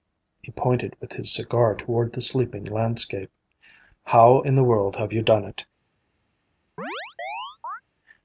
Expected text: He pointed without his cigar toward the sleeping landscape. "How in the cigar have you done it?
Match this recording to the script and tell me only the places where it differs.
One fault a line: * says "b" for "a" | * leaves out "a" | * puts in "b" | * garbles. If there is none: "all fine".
* says "with" for "without"
* says "world" for "cigar"